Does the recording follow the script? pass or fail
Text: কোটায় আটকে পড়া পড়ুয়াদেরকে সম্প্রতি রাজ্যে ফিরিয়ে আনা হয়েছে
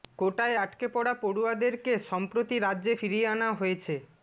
pass